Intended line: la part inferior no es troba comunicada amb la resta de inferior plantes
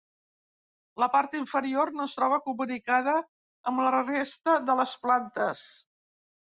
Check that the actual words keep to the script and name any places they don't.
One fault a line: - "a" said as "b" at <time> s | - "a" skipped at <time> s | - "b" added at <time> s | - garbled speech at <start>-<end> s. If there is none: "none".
- "inferior" said as "les" at 4.8 s